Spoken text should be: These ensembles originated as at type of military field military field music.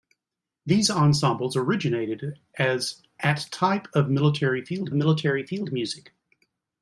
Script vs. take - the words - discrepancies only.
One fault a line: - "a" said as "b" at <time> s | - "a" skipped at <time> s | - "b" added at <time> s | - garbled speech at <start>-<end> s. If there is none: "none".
none